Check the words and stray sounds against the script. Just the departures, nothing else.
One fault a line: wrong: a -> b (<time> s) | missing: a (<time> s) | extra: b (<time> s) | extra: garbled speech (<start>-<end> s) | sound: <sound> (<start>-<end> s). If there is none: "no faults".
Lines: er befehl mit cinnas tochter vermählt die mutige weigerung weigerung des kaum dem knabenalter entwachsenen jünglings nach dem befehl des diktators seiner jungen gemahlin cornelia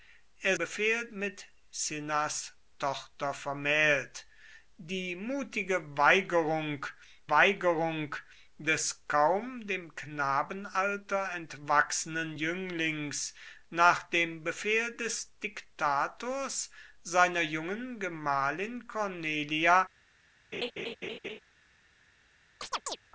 sound: laugh (20.5-21.4 s)
sound: chirp (22.6-23.0 s)